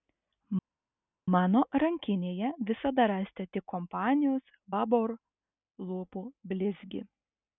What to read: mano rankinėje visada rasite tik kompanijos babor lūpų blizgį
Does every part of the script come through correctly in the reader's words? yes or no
yes